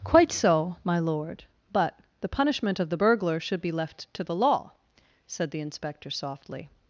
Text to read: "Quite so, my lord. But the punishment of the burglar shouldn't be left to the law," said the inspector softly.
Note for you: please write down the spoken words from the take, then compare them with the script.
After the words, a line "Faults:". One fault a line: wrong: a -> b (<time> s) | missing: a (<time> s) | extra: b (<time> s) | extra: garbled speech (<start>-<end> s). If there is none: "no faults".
"Quite so, my lord. But the punishment of the burglar should be left to the law," said the inspector softly.
Faults:
wrong: shouldn't -> should (3.4 s)